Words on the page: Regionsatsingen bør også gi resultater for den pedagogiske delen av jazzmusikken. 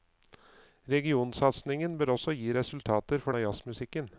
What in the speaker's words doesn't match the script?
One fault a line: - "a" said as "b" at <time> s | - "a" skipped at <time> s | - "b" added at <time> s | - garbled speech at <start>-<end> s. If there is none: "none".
- "den pedagogiske delen" skipped at 3.4 s